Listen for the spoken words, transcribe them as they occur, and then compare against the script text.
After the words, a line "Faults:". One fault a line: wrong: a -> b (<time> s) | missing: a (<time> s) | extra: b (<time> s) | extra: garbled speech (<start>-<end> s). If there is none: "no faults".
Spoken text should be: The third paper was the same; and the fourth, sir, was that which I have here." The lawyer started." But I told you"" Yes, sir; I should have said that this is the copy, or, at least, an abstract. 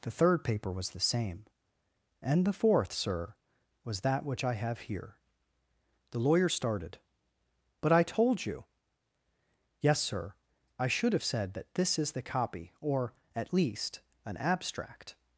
The third paper was the same; and the fourth, sir, was that which I have here." The lawyer started." But I told you"" Yes, sir; I should have said that this is the copy, or, at least, an abstract.
Faults:
no faults